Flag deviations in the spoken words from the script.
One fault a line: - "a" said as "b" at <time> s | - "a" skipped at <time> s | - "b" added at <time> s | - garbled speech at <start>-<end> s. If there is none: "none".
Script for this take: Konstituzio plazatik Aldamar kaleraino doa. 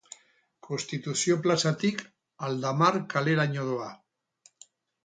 none